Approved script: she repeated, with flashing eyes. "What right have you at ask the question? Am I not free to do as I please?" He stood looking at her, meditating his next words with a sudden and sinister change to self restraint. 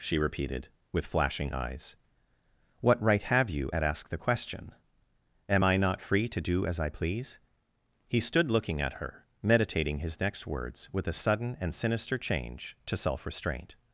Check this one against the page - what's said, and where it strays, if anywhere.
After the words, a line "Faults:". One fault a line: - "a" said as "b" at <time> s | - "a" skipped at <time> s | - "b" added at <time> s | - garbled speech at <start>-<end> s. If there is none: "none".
she repeated, with flashing eyes. "What right have you at ask the question? Am I not free to do as I please?" He stood looking at her, meditating his next words with a sudden and sinister change to self restraint.
Faults:
none